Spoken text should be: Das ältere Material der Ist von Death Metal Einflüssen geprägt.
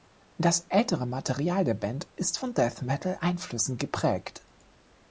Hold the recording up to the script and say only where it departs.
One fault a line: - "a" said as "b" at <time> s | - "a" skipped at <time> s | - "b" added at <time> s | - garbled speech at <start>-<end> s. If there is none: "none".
- "Band" added at 1.7 s